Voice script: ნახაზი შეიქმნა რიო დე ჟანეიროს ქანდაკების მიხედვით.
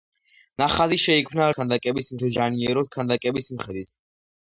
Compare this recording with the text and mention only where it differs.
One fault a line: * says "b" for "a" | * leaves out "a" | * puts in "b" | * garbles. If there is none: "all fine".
* says "ქანდაკების" for "რიო"